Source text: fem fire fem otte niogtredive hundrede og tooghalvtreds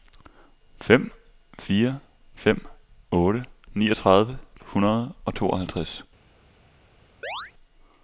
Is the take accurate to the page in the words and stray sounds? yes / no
no